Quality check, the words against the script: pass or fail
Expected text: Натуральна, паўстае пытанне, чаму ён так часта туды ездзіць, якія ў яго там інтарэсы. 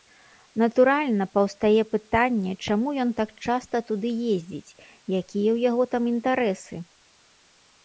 pass